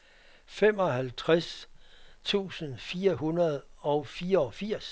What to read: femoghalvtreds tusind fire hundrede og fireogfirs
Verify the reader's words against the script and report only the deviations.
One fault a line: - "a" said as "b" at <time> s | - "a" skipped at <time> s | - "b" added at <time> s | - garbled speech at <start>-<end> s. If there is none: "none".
none